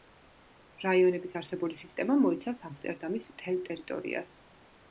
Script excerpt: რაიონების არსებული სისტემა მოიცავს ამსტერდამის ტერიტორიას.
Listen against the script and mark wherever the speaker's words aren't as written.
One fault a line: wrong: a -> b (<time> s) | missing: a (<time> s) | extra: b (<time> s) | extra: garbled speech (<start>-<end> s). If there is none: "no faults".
extra: მთელ (3.4 s)